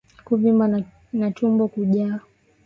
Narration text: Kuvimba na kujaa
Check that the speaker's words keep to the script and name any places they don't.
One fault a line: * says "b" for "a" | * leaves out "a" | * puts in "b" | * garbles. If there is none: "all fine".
* puts in "tumbo"